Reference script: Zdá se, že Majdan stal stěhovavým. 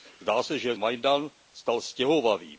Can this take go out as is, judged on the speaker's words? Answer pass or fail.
pass